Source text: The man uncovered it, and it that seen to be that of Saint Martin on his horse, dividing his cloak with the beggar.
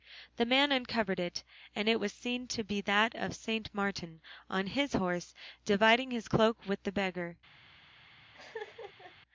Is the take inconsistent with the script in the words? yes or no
yes